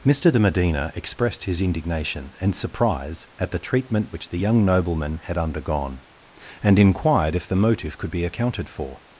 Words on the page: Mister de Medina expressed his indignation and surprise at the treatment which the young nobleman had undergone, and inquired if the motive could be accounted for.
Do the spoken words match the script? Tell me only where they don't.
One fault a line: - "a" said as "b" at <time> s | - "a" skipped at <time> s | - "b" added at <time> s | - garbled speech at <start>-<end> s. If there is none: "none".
none